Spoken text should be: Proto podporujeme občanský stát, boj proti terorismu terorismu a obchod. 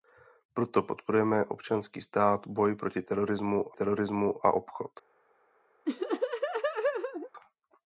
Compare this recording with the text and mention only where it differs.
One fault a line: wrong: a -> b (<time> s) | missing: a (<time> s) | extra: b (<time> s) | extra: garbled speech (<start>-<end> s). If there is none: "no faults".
no faults